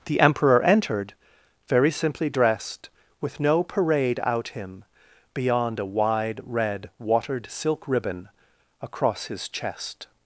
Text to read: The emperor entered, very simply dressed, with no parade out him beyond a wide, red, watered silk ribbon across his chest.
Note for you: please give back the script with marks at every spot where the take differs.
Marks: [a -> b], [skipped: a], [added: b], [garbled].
The emperor entered, very simply dressed, with no parade out him beyond a wide, red, watered silk ribbon across his chest.